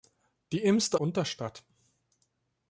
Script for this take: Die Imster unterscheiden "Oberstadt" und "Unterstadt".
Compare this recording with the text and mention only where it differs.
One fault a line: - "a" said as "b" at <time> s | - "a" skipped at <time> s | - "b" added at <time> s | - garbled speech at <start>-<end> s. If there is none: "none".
- "unterscheiden Oberstadt und" skipped at 1.0 s